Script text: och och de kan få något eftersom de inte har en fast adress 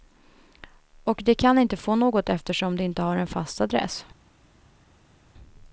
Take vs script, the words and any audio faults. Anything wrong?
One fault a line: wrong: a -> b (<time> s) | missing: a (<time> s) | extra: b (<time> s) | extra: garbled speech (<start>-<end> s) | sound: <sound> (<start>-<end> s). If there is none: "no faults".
missing: och (1.2 s)
extra: inte (1.6 s)